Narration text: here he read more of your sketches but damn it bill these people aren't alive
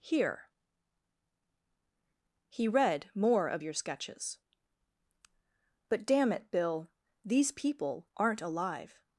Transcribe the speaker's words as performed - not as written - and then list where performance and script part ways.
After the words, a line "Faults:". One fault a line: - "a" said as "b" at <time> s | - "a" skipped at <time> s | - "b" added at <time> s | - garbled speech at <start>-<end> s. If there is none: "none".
here he read more of your sketches but damn it bill these people aren't alive
Faults:
none